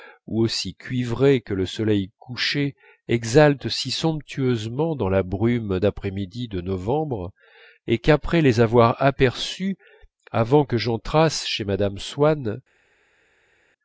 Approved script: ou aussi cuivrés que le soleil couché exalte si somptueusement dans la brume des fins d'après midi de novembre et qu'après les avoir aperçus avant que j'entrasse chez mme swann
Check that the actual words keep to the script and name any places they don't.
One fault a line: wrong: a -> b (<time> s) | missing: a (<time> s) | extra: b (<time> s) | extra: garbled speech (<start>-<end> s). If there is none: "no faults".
missing: des fins (5.8 s)